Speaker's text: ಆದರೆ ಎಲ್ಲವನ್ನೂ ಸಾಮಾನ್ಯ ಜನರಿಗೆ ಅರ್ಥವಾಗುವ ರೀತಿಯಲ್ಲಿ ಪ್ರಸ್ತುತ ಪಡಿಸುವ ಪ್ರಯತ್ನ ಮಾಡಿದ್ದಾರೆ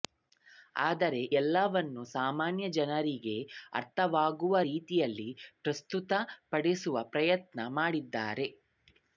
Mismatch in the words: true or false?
false